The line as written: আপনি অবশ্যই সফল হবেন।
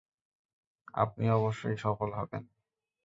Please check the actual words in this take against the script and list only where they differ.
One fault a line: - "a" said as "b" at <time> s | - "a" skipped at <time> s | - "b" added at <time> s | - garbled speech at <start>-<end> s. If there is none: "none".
none